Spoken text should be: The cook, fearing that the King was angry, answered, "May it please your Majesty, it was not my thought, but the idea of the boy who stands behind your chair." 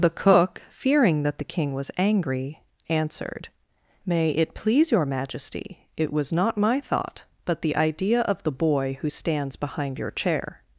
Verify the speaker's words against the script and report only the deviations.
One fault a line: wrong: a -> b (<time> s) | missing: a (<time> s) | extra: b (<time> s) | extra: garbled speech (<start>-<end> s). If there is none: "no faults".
no faults